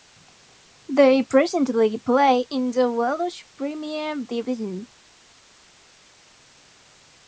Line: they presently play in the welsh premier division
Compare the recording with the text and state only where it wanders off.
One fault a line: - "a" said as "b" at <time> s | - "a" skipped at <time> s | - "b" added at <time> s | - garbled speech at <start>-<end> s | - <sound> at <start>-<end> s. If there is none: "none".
none